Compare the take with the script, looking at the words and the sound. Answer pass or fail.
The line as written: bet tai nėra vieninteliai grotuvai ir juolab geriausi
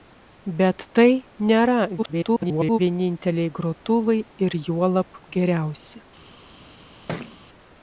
fail